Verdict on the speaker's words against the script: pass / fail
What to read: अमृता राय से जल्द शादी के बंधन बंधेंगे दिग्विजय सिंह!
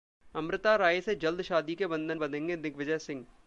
pass